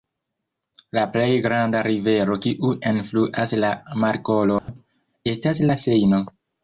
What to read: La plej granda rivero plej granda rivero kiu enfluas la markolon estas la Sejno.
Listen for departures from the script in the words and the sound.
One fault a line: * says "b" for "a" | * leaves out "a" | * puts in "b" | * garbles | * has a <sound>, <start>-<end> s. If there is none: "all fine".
* leaves out "plej granda rivero"
* has a dropout, 4.6-4.7 s